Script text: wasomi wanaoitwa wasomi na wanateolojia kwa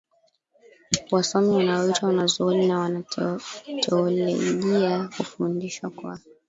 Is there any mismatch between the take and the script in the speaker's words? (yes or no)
yes